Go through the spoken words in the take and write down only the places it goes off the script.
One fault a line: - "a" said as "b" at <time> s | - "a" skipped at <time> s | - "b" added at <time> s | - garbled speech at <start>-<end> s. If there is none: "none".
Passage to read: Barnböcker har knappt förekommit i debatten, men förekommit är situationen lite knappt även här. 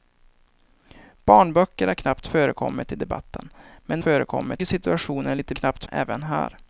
none